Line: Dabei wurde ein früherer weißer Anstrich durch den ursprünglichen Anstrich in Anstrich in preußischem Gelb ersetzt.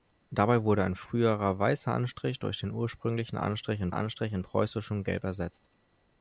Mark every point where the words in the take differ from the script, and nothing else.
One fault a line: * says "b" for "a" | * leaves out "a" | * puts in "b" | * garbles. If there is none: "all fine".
all fine